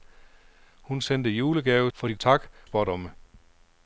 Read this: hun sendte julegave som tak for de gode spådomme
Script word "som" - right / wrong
wrong